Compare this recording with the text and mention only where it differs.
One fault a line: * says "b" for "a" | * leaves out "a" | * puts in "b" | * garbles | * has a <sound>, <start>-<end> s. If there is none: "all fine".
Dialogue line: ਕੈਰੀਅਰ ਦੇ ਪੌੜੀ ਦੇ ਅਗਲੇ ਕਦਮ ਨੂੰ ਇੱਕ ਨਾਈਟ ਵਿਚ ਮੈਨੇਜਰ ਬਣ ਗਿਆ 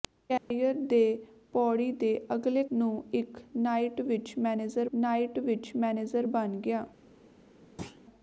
* has a dropout, 0.4-0.5 s
* leaves out "ਕਦਮ"
* puts in "ਨਾਈਟ ਵਿਚ ਮੈਨੇਜਰ"
* has a thud, 7.8-8.0 s